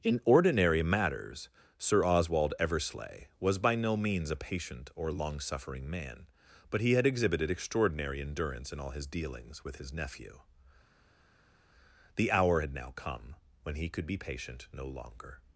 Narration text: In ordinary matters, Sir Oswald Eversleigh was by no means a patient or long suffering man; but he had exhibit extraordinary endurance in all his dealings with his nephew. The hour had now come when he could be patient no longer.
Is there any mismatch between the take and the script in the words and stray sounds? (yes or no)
yes